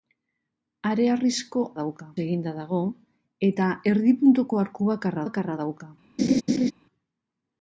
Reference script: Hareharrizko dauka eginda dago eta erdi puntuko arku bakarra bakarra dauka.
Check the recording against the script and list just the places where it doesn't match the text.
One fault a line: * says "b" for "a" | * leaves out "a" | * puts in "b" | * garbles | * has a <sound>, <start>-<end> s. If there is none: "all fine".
* has a laugh, 6.2-6.7 s